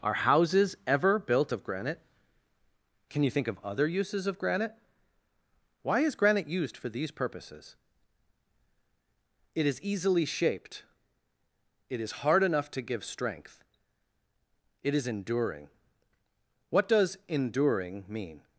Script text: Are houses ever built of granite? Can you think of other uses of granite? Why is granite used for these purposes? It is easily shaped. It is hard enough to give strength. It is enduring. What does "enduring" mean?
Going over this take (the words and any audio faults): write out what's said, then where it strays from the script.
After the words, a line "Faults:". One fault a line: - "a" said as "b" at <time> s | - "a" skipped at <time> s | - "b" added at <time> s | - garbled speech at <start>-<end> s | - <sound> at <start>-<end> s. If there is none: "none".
Are houses ever built of granite? Can you think of other uses of granite? Why is granite used for these purposes? It is easily shaped. It is hard enough to give strength. It is enduring. What does "enduring" mean?
Faults:
none